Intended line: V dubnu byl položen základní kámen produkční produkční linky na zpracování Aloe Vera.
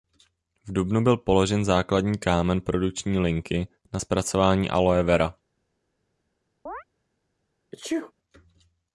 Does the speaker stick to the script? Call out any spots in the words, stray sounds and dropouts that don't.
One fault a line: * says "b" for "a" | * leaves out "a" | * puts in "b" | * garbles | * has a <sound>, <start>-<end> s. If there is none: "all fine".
* leaves out "produkční"
* has a chirp, 6.7-6.8 s
* has a sneeze, 7.7-8.1 s